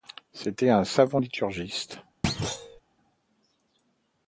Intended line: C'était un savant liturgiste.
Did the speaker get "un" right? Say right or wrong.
right